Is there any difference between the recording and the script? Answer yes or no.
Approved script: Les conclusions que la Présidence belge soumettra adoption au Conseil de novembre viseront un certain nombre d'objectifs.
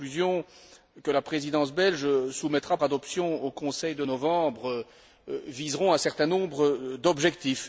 no